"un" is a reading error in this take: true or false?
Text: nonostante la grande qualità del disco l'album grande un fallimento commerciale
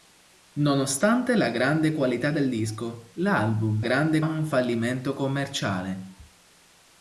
false